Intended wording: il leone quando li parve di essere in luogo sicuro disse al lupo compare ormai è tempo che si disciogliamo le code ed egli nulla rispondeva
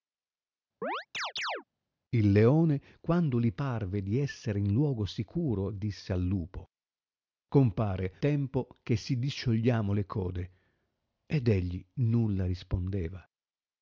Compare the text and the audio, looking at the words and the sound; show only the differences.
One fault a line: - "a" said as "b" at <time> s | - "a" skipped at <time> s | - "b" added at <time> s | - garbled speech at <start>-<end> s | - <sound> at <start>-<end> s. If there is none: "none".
- chirp at 0.8-1.6 s
- "ormai è" skipped at 8.1 s